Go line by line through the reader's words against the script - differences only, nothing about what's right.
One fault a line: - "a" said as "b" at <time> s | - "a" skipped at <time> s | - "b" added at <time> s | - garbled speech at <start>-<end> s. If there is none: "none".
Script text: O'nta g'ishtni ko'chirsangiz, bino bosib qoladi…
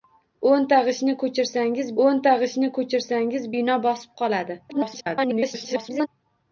- "o'nta g'ishtni ko'chirsangiz" added at 2.0 s
- garbled speech at 4.7-6.1 s